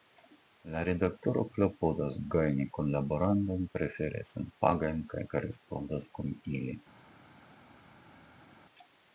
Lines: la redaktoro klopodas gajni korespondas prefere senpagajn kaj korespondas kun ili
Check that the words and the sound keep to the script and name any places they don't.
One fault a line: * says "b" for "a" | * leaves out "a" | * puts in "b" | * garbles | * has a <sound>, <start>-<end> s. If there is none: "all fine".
* says "kunlaborantojn" for "korespondas"